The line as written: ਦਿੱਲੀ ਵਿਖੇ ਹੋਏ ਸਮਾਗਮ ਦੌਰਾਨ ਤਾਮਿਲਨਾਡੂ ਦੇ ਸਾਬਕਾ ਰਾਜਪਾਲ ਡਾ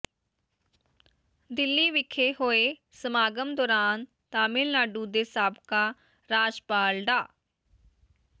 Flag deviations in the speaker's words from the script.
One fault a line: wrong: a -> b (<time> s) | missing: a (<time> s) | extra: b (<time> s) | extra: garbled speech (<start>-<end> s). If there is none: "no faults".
no faults